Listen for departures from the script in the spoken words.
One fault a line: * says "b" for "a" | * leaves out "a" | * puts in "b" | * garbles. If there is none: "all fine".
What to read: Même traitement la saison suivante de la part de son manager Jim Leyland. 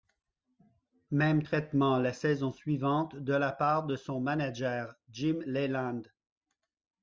all fine